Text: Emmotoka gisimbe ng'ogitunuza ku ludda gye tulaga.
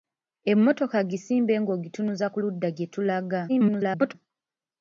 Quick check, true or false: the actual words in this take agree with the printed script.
false